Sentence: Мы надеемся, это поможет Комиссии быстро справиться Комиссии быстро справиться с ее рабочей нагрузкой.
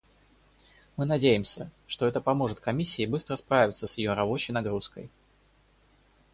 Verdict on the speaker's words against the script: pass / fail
fail